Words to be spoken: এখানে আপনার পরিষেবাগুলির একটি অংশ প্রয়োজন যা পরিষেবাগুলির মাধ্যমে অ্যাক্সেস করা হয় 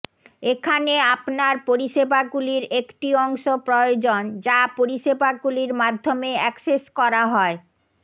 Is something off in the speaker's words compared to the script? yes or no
no